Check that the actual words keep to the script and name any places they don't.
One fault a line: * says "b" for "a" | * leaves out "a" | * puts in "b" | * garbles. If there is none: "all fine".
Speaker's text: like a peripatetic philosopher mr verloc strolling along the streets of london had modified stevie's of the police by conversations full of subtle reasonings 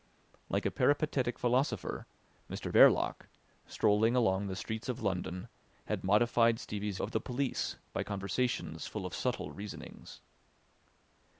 all fine